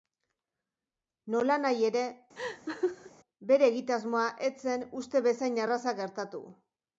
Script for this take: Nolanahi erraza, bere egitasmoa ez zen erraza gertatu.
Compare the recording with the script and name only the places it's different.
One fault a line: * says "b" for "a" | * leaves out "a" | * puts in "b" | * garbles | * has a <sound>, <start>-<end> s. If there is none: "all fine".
* says "ere" for "erraza"
* has a laugh, 2.4-3.1 s
* puts in "uste bezain"